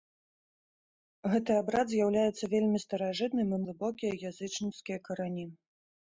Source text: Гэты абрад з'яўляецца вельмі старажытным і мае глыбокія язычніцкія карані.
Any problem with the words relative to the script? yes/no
yes